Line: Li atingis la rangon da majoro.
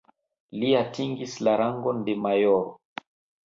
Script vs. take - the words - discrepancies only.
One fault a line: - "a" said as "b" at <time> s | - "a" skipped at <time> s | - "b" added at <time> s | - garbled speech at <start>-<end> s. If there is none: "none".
- "da" said as "de" at 2.1 s